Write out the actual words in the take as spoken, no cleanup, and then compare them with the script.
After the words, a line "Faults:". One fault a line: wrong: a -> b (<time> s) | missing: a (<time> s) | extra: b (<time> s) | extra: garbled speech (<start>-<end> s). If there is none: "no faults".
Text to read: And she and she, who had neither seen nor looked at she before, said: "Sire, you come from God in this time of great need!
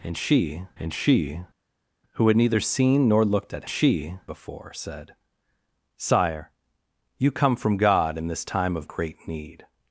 And she and she, who had neither seen nor looked at she before, said: "Sire, you come from God in this time of great need!
Faults:
no faults